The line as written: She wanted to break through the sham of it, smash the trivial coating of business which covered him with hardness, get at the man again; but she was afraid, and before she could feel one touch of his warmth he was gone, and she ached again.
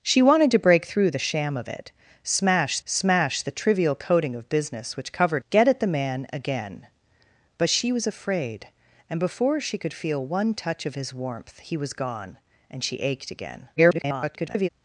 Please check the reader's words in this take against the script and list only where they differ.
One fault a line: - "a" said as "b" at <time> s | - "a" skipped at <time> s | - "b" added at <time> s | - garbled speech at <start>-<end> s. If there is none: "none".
- "smash" added at 2.8 s
- "him with hardness" skipped at 5.4 s
- garbled speech at 13.8-14.7 s